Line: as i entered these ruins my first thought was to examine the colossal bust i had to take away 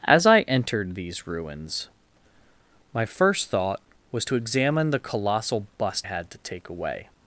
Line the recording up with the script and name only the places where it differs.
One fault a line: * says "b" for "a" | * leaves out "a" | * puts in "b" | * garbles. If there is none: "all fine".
* leaves out "i"